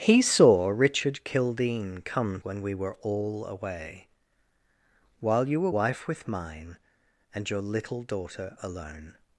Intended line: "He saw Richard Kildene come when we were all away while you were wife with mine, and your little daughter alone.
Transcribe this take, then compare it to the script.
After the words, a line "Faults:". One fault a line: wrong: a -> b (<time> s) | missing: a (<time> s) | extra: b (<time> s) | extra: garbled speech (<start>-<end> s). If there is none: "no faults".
"He saw Richard Kildene come when we were all away while you were wife with mine, and your little daughter alone.
Faults:
no faults